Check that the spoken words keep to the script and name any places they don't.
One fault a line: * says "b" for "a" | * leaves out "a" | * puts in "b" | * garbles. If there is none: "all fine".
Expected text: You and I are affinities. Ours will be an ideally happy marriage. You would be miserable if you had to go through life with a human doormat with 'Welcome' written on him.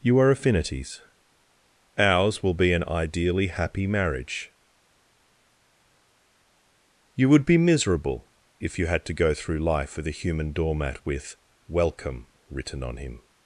* leaves out "and I"